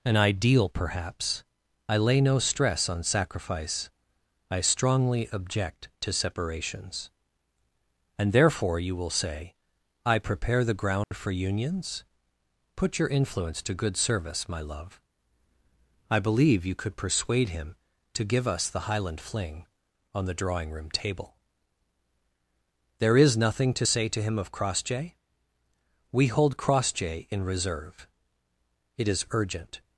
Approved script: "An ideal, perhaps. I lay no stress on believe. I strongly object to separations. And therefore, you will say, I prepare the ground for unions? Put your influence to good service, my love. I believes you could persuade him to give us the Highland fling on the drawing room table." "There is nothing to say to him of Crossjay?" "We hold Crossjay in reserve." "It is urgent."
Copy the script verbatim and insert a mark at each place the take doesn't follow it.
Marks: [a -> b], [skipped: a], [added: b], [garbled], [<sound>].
"An ideal, perhaps. I lay no stress on [believe. -> sacrifice] I strongly object to separations. And therefore, you will say, I prepare the ground [dropout] for unions? Put your influence to good service, my love. I [believes -> believe] you could persuade him to give us the Highland fling on the drawing room table." "There is nothing to say to him of Crossjay?" "We hold Crossjay in reserve." "It is urgent."